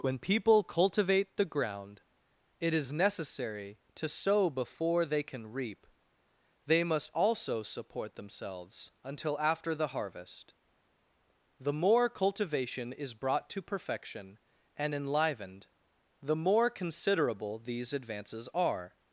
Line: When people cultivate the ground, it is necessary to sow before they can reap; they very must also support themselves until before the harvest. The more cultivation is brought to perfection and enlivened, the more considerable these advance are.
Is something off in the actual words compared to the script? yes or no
yes